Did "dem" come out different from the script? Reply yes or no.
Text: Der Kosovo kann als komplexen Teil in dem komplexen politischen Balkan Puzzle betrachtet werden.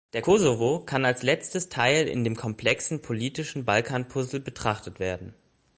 no